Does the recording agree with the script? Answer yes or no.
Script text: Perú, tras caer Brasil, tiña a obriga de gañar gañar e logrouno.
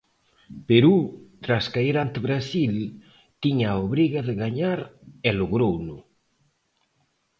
no